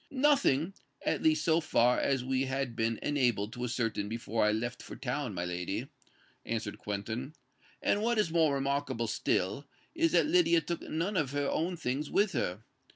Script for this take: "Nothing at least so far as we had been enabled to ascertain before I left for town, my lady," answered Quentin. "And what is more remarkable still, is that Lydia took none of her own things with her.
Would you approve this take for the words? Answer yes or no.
yes